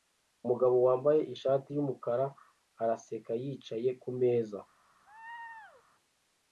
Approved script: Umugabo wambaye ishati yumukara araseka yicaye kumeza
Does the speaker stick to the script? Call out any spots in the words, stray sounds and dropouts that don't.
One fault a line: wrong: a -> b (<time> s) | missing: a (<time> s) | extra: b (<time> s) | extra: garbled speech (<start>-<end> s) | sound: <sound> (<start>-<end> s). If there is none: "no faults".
sound: laugh (5.1-5.8 s)